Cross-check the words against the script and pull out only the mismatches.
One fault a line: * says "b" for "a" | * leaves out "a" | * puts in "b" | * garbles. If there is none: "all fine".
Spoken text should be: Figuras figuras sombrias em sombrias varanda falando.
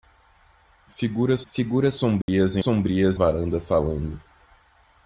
all fine